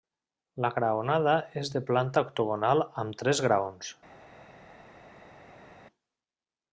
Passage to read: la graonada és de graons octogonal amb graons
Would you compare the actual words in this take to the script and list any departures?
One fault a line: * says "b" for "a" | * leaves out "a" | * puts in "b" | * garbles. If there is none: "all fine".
* says "planta" for "graons"
* puts in "tres"